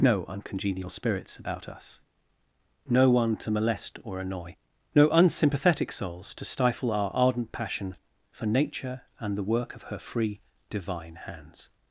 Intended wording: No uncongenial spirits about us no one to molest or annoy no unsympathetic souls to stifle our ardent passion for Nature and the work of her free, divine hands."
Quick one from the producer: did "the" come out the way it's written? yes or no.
yes